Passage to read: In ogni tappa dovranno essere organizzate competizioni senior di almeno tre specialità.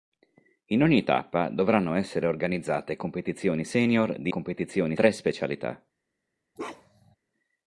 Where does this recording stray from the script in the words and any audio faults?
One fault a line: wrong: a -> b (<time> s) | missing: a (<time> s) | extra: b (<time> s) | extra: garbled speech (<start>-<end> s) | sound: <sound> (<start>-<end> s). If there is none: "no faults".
wrong: almeno -> competizioni (4.3 s)
sound: bark (6.6-7.2 s)